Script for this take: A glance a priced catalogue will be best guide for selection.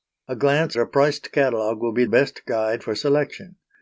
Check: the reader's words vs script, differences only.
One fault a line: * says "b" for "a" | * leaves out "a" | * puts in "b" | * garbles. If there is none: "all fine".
all fine